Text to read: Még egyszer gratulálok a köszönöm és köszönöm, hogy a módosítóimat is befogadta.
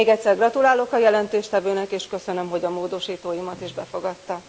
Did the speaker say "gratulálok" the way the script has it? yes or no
yes